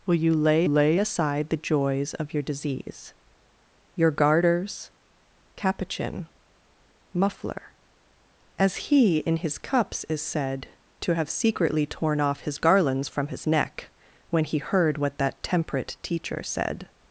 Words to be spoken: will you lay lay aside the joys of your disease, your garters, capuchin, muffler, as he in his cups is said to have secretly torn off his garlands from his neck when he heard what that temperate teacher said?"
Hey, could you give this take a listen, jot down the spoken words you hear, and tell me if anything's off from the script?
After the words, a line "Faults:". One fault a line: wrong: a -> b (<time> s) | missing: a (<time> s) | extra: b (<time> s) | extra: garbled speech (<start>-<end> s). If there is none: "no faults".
will you lay lay aside the joys of your disease, your garters, capuchin, muffler, as he in his cups is said to have secretly torn off his garlands from his neck when he heard what that temperate teacher said?"
Faults:
no faults